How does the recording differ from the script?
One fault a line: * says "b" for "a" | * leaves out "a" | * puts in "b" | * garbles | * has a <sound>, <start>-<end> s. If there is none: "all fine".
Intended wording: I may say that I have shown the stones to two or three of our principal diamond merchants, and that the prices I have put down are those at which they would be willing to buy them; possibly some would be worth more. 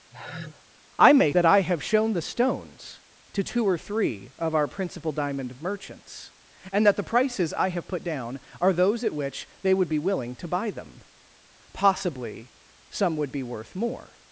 * has a sigh, 0.1-0.6 s
* leaves out "say"